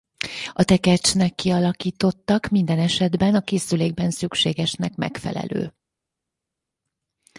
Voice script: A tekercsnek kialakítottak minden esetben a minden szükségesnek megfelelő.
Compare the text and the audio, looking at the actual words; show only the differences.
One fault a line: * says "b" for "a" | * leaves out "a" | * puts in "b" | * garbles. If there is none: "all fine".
* says "készülékben" for "minden"